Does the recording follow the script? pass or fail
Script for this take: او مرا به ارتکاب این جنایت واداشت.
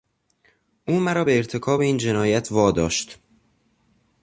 pass